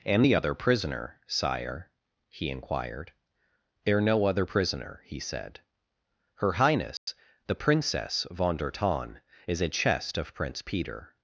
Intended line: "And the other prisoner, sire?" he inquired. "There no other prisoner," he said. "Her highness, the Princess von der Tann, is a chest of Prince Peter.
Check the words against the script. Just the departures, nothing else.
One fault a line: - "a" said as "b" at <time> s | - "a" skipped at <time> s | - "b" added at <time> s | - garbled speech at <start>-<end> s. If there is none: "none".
none